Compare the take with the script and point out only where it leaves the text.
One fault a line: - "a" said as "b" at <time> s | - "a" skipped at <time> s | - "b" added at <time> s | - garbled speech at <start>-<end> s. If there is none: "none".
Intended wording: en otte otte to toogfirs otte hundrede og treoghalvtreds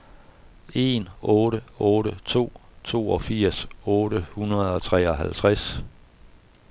none